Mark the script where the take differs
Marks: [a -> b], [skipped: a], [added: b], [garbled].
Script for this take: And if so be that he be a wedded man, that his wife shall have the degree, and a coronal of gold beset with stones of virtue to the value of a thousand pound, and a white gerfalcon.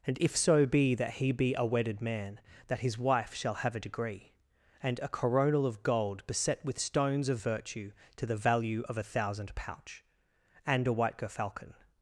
And if so be that he be a wedded man, that his wife shall have [the -> a] degree, and a coronal of gold beset with stones of virtue to the value of a thousand [pound, -> pouch] and a white gerfalcon.